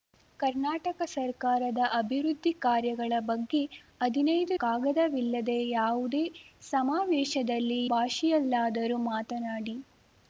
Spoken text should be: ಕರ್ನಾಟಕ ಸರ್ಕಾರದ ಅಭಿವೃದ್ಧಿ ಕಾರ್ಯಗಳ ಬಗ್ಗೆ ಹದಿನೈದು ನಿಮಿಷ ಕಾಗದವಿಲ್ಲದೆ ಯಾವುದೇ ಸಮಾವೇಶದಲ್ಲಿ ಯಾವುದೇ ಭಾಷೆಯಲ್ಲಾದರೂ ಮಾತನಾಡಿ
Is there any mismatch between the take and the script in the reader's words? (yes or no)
yes